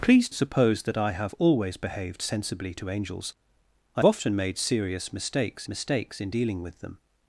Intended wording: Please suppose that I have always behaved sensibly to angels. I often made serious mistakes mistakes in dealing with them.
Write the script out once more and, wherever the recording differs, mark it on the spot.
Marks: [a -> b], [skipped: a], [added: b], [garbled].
Please suppose that I have always behaved sensibly to angels. I often made serious mistakes mistakes in dealing with them.